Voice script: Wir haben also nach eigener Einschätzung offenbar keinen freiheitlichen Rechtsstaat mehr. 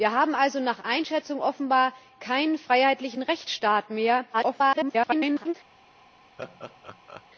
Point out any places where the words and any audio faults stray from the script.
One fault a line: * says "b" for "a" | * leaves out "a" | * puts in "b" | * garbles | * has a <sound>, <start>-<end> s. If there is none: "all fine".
* leaves out "eigener"
* garbles
* has a laugh, 6.4-7.2 s